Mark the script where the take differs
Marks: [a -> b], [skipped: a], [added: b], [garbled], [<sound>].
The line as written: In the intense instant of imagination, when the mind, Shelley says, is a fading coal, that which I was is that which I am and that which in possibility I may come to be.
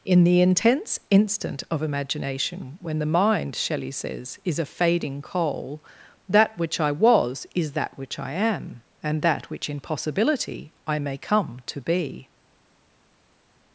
In the intense instant of imagination, when the mind, Shelley says, is a fading coal, that which I was is that which I am and that which in possibility I may come to be.